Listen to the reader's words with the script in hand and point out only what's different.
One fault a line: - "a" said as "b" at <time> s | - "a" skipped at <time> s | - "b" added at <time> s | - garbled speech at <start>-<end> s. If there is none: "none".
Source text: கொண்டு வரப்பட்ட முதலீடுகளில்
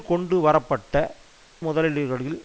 none